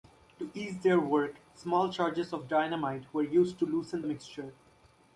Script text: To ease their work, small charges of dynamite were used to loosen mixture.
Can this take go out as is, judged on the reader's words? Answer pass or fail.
pass